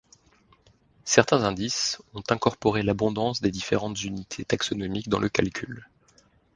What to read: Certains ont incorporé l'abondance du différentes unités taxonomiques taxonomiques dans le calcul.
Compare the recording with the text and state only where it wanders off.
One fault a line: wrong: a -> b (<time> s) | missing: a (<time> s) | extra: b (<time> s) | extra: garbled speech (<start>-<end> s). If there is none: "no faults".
extra: indices (1.4 s)
wrong: du -> des (3.4 s)
missing: taxonomiques (5.1 s)